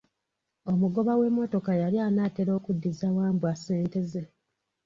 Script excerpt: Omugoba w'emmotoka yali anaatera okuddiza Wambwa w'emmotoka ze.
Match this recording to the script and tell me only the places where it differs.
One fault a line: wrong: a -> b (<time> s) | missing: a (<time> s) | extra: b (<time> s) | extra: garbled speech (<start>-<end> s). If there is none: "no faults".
wrong: w'emmotoka -> ssente (3.6 s)